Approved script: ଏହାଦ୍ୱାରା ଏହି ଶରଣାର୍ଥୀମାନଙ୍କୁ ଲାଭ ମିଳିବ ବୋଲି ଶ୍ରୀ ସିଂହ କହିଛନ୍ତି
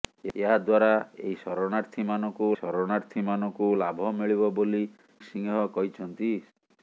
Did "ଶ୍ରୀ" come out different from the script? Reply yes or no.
yes